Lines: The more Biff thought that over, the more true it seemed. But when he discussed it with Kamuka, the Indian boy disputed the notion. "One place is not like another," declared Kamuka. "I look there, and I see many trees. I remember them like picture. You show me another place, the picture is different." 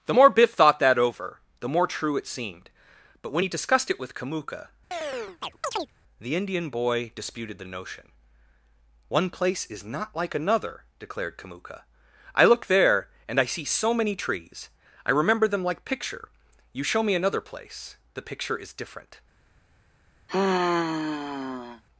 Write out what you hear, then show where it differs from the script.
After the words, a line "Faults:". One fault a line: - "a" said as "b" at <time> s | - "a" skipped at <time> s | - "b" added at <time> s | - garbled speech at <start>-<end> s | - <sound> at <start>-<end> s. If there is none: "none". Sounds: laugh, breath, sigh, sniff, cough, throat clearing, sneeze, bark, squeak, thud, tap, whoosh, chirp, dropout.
The more Biff thought that over, the more true it seemed. But when he discussed it with Kamuka, the Indian boy disputed the notion. "One place is not like another," declared Kamuka. "I look there, and I see so many trees. I remember them like picture. You show me another place, the picture is different."
Faults:
- chirp at 4.9-5.9 s
- "so" added at 13.6 s
- sigh at 20.3-21.8 s